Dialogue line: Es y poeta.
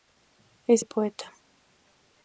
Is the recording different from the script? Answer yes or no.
no